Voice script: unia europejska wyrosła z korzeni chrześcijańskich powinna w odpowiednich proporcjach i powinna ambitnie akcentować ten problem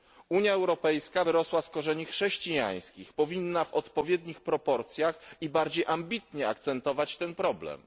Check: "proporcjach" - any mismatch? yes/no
no